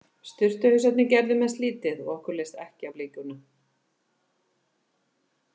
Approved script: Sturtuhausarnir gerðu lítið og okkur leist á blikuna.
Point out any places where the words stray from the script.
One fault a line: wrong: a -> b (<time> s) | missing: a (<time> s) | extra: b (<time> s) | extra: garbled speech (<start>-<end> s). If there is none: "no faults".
extra: mest (1.4 s)
extra: ekki (2.6 s)